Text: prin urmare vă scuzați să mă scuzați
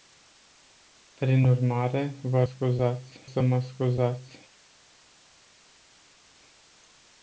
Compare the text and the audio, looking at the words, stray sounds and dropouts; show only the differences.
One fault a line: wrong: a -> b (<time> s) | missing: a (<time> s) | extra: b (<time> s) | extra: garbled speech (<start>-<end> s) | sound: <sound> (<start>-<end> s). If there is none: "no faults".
no faults